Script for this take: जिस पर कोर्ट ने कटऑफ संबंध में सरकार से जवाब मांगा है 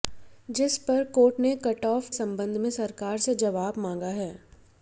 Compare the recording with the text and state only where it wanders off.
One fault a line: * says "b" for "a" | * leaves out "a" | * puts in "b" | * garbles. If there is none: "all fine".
all fine